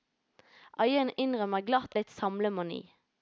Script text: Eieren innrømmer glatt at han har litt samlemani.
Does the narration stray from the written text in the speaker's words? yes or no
yes